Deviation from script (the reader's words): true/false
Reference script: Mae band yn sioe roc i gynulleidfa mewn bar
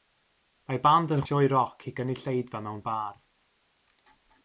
false